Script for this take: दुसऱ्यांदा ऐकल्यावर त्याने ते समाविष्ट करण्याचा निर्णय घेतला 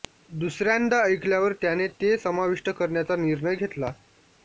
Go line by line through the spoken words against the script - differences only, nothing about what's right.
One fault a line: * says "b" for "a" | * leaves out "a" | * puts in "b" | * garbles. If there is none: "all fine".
all fine